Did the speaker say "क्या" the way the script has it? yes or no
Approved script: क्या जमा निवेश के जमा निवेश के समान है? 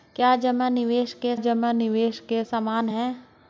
yes